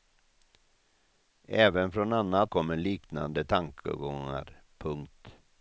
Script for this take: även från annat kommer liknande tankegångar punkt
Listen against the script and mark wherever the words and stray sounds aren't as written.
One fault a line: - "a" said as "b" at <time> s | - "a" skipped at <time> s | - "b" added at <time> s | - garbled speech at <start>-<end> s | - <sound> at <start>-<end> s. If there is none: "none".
none